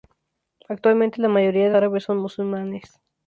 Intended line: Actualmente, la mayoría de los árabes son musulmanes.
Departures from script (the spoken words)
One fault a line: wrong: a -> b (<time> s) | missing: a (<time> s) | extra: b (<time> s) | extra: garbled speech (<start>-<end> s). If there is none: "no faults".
missing: los (1.8 s)